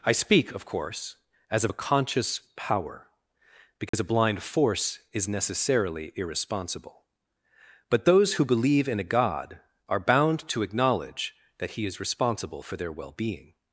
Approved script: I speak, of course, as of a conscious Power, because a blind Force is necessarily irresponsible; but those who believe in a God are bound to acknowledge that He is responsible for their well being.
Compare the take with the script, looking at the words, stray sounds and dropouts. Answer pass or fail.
fail